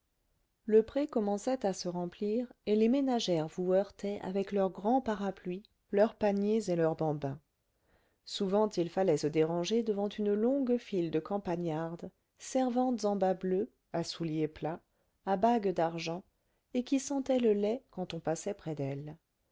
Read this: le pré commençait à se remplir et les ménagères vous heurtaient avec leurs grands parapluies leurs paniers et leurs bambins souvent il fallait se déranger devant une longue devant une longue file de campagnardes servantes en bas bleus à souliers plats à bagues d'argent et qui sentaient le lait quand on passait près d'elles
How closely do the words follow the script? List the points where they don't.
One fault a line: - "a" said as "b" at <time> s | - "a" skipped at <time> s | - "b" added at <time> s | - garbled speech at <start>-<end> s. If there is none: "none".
- "devant une longue" skipped at 10.8 s